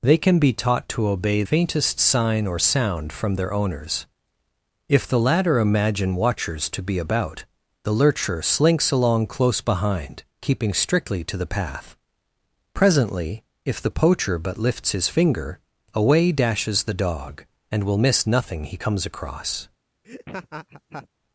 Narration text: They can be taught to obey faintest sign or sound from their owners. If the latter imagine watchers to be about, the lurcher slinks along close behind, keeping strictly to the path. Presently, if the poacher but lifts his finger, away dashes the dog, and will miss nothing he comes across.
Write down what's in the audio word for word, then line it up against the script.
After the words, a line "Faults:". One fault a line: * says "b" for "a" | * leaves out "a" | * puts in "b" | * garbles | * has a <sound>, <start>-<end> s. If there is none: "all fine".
They can be taught to obey faintest sign or sound from their owners. If the latter imagine watchers to be about, the lurcher slinks along close behind, keeping strictly to the path. Presently, if the poacher but lifts his finger, away dashes the dog, and will miss nothing he comes across.
Faults:
* has a laugh, 20.0-21.1 s